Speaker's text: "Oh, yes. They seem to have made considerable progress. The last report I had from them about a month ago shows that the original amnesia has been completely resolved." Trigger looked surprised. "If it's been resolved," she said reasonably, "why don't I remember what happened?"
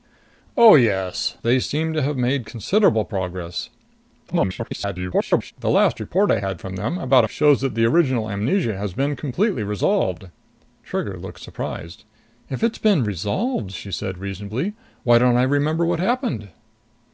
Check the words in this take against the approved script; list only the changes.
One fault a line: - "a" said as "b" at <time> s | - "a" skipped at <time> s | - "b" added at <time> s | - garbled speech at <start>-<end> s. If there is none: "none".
- garbled speech at 4.3-5.5 s
- "month ago" skipped at 7.3 s